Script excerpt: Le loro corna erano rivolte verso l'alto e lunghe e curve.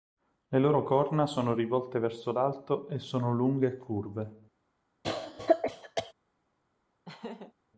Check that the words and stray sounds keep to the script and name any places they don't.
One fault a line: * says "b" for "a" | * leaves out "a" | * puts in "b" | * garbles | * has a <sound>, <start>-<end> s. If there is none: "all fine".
* says "sono" for "erano"
* puts in "sono"
* has a cough, 5.0-6.1 s
* has a laugh, 7.1-7.5 s